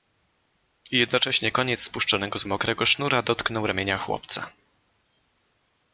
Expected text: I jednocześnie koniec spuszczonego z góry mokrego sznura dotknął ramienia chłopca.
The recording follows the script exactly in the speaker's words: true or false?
false